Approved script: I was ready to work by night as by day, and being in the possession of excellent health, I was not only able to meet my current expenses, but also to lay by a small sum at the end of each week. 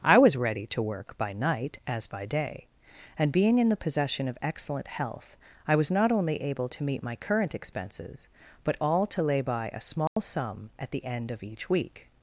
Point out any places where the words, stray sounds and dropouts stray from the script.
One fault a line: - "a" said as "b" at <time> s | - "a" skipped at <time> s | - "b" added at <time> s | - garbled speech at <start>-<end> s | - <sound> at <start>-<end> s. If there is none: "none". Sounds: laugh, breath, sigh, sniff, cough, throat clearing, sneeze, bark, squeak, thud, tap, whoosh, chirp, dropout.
- "also" said as "all" at 8.8 s
- dropout at 10.1-10.2 s